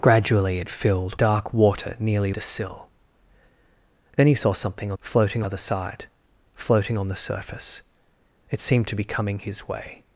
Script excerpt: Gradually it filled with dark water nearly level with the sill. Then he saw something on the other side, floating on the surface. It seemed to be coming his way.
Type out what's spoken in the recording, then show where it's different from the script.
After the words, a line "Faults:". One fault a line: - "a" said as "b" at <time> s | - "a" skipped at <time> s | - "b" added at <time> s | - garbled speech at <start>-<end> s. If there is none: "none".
Gradually it filled dark water nearly the sill. Then he saw something on floating other side, floating on the surface. It seemed to be coming his way.
Faults:
- "with" skipped at 1.2 s
- "level with" skipped at 2.3 s
- "the" said as "floating" at 5.0 s